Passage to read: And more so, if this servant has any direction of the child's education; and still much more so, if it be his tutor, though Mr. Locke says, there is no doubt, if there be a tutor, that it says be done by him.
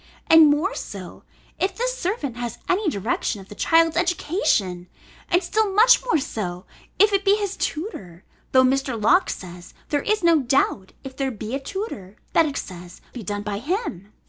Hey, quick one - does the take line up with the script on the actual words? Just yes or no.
yes